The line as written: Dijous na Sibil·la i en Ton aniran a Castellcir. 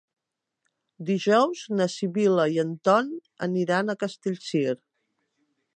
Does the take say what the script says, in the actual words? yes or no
yes